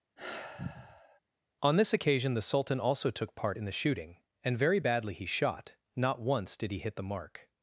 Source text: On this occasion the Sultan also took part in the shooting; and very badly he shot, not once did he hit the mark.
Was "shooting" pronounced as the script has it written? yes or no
yes